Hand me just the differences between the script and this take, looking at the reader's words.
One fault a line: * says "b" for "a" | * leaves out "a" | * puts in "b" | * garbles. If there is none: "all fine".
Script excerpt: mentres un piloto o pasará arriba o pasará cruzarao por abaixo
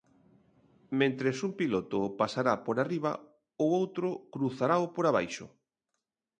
* puts in "por"
* says "outro" for "pasará"